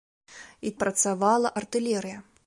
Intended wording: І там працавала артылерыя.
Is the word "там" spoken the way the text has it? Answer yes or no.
no